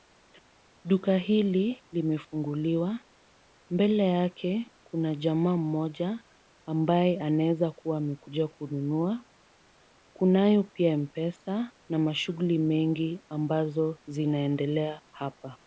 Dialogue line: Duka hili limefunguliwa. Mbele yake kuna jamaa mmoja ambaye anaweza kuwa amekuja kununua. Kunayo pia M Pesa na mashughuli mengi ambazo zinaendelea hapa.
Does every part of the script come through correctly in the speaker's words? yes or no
yes